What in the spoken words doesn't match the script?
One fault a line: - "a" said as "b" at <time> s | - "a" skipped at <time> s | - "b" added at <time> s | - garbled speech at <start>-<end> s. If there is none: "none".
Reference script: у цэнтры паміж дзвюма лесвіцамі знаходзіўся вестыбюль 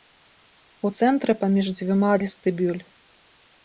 - "лесвіцамі знаходзіўся" skipped at 2.1 s